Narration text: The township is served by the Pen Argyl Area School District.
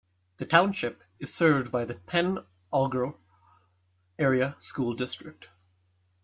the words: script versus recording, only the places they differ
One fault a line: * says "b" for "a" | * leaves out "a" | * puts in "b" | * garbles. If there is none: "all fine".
all fine